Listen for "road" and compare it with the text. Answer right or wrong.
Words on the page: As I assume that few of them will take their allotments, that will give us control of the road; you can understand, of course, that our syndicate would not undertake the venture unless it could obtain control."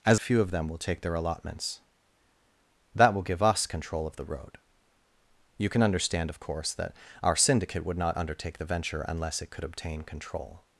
right